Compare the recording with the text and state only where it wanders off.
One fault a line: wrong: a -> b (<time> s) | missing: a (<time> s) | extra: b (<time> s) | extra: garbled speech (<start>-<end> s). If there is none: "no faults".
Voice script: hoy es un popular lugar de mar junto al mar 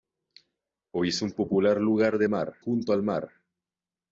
no faults